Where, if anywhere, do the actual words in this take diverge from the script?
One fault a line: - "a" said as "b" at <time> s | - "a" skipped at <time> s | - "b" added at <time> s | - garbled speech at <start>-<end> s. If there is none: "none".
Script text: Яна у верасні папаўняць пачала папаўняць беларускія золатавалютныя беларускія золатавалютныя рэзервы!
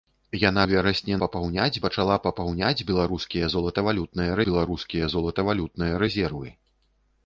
none